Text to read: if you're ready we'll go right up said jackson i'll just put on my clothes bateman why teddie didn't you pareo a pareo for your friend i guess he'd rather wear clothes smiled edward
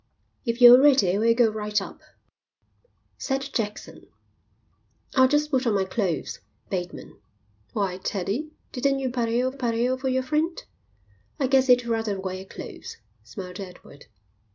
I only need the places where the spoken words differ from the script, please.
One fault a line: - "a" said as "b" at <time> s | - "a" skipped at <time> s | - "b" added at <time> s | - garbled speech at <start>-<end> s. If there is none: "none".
none